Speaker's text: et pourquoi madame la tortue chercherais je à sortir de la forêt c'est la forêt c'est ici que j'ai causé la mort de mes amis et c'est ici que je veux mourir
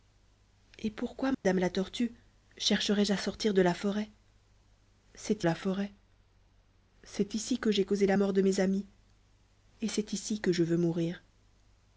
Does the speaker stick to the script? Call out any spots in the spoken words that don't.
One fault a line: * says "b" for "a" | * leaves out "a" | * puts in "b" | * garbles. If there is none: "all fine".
all fine